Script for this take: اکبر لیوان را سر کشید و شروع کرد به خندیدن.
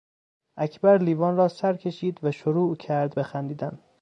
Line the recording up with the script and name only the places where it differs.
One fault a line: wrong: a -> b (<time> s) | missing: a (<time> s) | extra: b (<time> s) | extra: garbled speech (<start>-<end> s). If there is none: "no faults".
no faults